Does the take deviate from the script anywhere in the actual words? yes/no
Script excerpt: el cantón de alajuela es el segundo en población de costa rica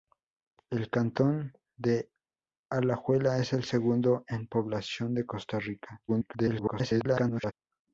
yes